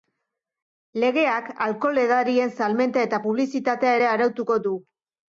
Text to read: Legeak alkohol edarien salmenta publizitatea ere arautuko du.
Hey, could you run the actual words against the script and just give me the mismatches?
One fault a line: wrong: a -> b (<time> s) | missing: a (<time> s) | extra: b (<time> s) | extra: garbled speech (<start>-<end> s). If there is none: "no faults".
extra: eta (3.1 s)